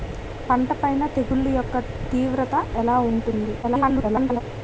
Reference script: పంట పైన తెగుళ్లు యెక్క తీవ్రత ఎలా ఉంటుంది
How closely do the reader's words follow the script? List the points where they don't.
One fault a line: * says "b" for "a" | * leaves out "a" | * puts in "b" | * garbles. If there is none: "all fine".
* garbles